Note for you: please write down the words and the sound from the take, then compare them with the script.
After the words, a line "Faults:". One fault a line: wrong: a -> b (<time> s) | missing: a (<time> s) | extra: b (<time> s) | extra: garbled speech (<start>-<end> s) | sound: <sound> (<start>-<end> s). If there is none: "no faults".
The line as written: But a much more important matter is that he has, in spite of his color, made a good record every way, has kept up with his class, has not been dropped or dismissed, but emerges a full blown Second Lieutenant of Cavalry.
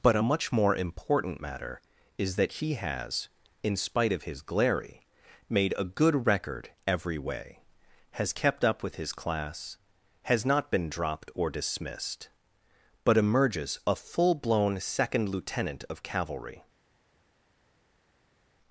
But a much more important matter is that he has, in spite of his glary, made a good record every way, has kept up with his class, has not been dropped or dismissed, but emerges a full blown Second Lieutenant of Cavalry.
Faults:
wrong: color -> glary (4.4 s)